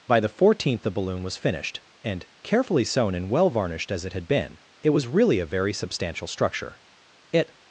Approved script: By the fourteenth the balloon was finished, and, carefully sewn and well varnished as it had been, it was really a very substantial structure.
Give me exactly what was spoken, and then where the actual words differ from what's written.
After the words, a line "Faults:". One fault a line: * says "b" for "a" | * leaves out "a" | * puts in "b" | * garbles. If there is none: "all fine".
By the fourteenth the balloon was finished, and, carefully sewn and well varnished as it had been, it was really a very substantial structure. It
Faults:
* puts in "It"